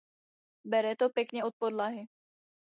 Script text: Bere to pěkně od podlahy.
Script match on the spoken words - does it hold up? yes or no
yes